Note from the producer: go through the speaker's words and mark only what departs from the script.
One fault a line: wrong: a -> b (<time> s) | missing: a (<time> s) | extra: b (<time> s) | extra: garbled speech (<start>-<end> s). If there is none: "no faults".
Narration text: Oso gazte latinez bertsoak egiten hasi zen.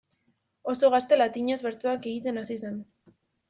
no faults